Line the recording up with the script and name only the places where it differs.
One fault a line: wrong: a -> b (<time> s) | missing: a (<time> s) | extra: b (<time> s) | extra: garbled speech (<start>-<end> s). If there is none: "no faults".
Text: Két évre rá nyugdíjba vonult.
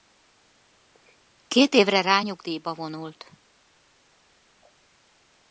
no faults